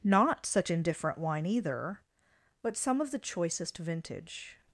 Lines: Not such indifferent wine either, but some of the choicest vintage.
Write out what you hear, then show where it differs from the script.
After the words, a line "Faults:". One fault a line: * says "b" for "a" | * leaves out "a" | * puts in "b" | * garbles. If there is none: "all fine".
Not such indifferent wine either, but some of the choicest vintage.
Faults:
all fine